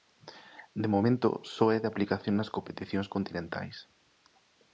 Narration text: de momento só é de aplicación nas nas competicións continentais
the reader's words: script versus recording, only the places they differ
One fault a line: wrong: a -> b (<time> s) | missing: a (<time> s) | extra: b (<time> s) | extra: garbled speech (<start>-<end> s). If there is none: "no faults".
missing: nas (2.5 s)